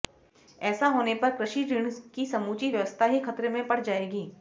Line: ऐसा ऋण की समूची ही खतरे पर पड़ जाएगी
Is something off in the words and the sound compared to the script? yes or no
yes